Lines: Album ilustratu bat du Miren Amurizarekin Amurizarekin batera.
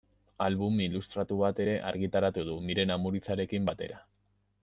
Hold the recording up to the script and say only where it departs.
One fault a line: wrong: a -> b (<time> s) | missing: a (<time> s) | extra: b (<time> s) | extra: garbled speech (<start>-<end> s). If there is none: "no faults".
extra: ere argitaratu (1.6 s)
missing: Amurizarekin (3.7 s)